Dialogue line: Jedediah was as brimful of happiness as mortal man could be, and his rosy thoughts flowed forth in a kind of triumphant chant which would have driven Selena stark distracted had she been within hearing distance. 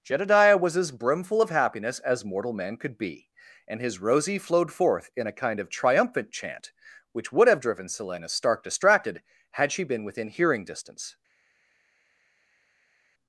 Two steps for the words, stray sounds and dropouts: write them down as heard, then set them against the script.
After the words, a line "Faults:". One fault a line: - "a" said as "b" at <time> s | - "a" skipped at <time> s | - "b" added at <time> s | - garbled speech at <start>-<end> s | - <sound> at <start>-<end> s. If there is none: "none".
Jedediah was as brimful of happiness as mortal man could be, and his rosy flowed forth in a kind of triumphant chant which would have driven Selena stark distracted had she been within hearing distance.
Faults:
- "thoughts" skipped at 4.4 s